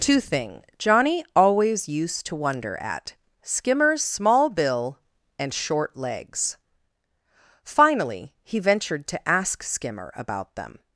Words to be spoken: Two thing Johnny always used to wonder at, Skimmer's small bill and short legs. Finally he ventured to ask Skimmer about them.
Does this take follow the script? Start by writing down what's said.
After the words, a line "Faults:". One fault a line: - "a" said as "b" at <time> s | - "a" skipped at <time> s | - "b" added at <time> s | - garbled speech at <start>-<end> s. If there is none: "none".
Two thing Johnny always used to wonder at, Skimmer's small bill and short legs. Finally he ventured to ask Skimmer about them.
Faults:
none